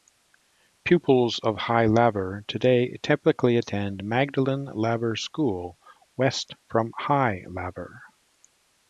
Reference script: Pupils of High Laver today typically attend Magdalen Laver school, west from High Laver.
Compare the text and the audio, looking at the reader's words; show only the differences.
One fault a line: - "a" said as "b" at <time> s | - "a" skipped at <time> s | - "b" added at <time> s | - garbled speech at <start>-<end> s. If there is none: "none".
none